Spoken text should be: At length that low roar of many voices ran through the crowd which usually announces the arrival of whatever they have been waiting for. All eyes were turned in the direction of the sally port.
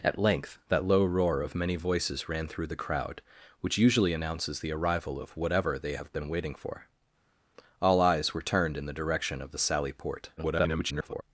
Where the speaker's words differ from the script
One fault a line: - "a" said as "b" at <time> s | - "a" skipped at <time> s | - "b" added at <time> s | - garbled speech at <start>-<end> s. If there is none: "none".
- garbled speech at 10.4-11.2 s